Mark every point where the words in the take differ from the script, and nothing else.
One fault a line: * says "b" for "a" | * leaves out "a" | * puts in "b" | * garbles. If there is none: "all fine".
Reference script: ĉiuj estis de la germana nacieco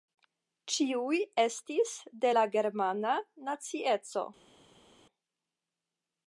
all fine